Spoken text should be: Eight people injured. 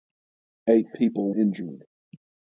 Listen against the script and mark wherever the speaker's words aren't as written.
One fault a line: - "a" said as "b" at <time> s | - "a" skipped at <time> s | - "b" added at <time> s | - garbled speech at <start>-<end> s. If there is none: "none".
none